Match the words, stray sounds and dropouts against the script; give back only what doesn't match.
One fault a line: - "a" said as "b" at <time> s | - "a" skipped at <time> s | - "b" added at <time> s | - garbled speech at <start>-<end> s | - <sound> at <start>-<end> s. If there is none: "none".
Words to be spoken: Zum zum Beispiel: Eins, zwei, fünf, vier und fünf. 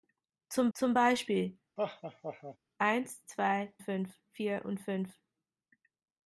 - laugh at 1.8-2.6 s